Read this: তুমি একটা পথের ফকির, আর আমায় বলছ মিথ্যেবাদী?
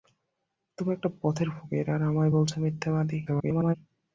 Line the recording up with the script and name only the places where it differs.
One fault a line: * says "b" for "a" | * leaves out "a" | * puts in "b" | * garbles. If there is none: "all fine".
* garbles